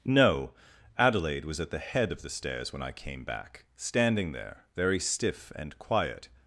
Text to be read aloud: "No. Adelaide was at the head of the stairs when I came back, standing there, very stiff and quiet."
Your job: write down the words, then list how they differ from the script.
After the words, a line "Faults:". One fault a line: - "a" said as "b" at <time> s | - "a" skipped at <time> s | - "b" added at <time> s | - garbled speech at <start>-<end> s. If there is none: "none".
"No. Adelaide was at the head of the stairs when I came back, standing there, very stiff and quiet."
Faults:
none